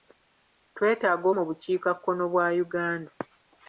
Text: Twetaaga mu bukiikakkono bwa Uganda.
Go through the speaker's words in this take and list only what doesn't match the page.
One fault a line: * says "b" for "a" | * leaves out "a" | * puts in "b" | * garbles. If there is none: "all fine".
all fine